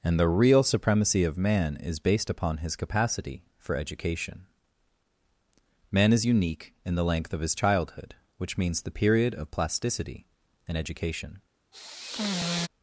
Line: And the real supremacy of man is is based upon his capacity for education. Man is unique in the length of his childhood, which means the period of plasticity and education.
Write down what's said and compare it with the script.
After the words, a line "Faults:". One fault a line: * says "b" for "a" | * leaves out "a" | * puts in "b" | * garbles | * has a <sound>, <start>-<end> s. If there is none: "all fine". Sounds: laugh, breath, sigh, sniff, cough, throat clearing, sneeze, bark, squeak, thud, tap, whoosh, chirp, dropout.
And the real supremacy of man is based upon his capacity for education. Man is unique in the length of his childhood, which means the period of plasticity and education.
Faults:
* leaves out "is"
* has a sigh, 11.7-12.7 s